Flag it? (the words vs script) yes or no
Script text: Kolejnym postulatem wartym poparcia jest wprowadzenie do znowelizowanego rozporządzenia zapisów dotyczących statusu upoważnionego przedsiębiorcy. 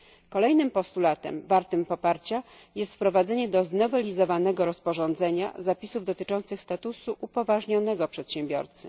no